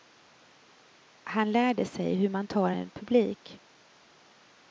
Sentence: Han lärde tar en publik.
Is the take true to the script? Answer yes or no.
no